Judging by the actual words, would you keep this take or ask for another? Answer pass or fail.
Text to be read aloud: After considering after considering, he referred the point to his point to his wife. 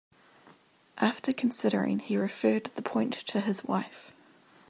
fail